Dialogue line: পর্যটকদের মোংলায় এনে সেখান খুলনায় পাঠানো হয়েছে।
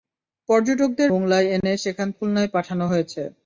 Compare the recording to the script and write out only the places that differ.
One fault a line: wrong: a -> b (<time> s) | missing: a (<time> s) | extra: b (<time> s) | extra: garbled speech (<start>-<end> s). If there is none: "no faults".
no faults